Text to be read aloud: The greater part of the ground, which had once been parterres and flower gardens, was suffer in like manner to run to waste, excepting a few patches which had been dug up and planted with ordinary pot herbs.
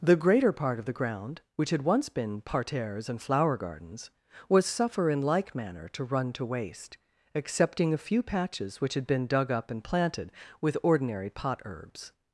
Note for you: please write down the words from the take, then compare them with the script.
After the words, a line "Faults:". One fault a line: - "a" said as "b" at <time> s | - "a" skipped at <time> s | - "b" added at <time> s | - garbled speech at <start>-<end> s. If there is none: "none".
The greater part of the ground, which had once been parterres and flower gardens, was suffer in like manner to run to waste, excepting a few patches which had been dug up and planted with ordinary pot herbs.
Faults:
none